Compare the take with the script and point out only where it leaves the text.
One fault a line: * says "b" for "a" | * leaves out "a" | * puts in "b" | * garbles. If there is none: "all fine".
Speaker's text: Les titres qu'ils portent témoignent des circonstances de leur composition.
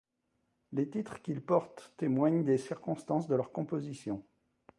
all fine